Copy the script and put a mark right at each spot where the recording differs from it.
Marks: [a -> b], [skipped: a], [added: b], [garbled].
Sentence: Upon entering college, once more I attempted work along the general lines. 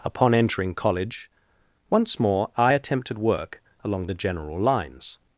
Upon entering college, once more I attempted work along the general lines.